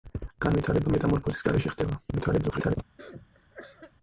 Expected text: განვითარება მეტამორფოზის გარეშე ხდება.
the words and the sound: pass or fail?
fail